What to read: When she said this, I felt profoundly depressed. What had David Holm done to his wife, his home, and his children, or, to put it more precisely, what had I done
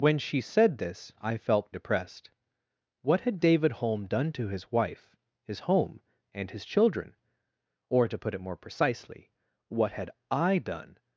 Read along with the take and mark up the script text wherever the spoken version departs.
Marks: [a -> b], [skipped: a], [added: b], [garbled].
When she said this, I felt [skipped: profoundly] depressed. What had David Holm done to his wife, his home, and his children, or, to put it more precisely, what had I done